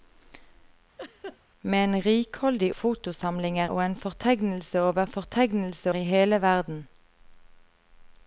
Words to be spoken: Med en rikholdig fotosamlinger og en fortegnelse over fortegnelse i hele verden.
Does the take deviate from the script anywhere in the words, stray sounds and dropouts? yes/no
yes